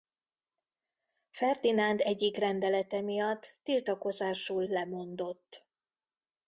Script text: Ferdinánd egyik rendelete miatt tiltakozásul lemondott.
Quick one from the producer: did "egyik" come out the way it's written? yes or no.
yes